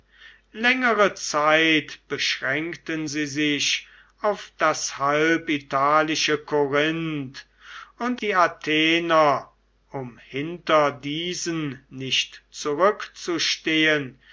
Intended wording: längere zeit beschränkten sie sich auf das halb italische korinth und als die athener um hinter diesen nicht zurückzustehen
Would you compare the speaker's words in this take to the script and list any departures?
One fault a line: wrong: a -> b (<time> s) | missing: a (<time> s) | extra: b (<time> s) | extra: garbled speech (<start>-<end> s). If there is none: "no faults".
missing: als (8.2 s)